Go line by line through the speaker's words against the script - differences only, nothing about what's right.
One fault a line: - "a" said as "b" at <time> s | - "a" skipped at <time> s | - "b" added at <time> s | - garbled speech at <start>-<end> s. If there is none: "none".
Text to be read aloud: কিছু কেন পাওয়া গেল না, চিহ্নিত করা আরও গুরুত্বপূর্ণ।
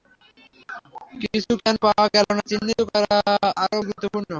none